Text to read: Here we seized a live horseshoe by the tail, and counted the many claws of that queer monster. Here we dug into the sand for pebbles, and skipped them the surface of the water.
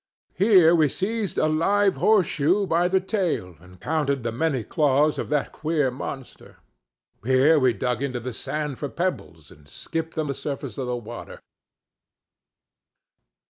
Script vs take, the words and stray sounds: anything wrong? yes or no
no